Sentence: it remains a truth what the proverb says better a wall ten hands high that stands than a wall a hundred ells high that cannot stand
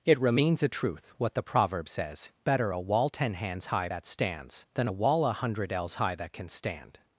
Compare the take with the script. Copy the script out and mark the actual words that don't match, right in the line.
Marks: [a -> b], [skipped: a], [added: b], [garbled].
it remains a truth what the proverb says better a wall ten hands high that stands than a wall a hundred ells high that [cannot -> can] stand